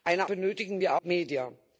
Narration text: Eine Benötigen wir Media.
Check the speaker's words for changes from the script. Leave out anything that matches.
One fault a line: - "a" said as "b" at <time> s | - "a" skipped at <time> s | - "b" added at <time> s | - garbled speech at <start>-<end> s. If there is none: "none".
none